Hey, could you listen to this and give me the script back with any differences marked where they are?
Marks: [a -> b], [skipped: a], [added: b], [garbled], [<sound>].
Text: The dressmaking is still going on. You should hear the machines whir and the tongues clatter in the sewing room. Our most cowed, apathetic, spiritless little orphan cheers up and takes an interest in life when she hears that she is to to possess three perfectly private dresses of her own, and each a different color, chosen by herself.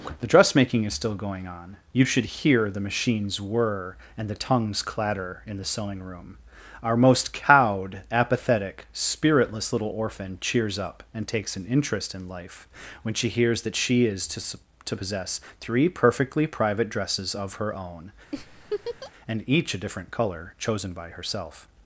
The dressmaking is still going on. You should hear the machines whir and the tongues clatter in the sewing room. Our most cowed, apathetic, spiritless little orphan cheers up and takes an interest in life when she hears that she is to to possess three perfectly private dresses of her own, [laugh] and each a different color, chosen by herself.